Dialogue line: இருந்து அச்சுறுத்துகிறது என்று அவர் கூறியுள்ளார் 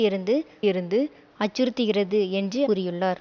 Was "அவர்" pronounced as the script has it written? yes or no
no